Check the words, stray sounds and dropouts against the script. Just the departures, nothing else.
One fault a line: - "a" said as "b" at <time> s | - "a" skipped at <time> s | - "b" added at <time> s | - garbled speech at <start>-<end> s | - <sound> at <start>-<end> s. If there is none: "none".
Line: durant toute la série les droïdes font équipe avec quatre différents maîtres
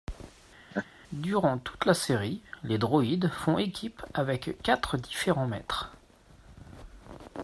- laugh at 0.7-0.9 s